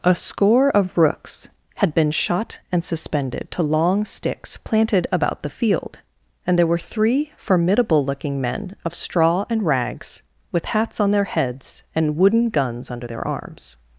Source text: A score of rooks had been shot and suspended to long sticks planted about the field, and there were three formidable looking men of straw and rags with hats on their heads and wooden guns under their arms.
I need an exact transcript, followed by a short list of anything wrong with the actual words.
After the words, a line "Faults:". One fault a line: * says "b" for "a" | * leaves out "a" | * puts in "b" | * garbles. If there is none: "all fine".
A score of rooks had been shot and suspended to long sticks planted about the field, and there were three formidable looking men of straw and rags with hats on their heads and wooden guns under their arms.
Faults:
all fine